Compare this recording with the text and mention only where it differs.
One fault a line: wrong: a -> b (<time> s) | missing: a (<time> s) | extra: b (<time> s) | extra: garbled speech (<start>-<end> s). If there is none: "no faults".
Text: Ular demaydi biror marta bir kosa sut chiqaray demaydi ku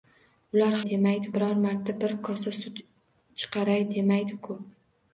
no faults